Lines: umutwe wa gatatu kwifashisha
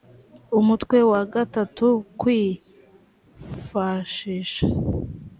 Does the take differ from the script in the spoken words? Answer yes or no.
no